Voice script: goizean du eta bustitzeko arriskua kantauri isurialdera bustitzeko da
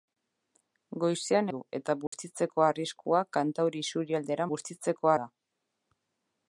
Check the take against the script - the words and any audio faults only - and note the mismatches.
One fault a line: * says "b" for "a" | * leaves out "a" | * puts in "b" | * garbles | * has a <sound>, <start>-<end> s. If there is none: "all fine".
* has a dropout, 2.1-2.1 s